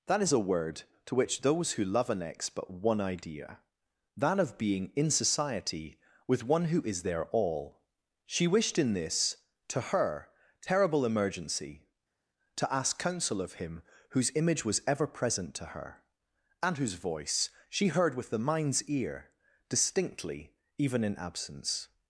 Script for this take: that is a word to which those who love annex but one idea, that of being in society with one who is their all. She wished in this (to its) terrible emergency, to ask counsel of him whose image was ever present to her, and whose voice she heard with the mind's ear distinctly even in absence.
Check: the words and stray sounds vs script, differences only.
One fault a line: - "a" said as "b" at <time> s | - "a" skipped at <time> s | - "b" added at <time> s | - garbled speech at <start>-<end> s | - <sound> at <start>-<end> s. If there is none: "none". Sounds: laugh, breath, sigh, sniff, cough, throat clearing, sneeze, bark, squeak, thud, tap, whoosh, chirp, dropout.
- "its" said as "her" at 9.8 s